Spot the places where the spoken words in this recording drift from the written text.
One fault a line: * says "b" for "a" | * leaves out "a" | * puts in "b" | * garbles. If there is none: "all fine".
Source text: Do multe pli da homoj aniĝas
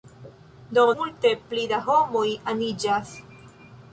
all fine